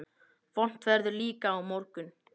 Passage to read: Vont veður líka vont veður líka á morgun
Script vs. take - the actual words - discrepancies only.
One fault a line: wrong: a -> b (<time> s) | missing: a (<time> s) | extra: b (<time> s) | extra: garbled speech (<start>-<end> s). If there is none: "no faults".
missing: vont veður líka (1.5 s)